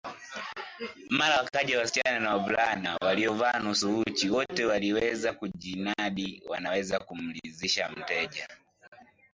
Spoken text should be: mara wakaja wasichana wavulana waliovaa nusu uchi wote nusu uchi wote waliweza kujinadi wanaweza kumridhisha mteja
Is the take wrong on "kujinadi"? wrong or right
right